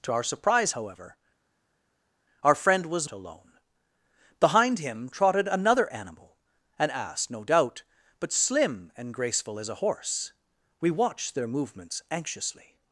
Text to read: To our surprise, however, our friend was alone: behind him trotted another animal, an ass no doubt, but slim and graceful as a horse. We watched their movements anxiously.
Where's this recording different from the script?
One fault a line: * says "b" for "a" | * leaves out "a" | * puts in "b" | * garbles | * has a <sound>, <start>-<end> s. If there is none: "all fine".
all fine